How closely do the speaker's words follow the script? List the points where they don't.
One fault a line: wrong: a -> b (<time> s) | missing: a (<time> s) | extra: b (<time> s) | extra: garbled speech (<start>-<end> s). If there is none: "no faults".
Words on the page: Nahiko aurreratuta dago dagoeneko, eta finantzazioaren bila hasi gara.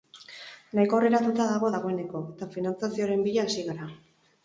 no faults